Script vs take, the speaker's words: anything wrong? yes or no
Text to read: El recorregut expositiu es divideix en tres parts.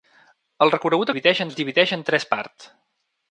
yes